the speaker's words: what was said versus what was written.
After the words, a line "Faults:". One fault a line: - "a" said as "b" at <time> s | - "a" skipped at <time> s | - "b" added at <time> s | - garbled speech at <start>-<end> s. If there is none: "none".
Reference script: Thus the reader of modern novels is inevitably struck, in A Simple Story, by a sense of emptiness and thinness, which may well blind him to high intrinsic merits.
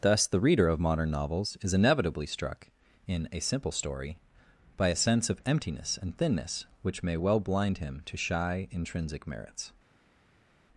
Thus the reader of modern novels is inevitably struck, in A Simple Story, by a sense of emptiness and thinness, which may well blind him to shy intrinsic merits.
Faults:
- "high" said as "shy" at 8.2 s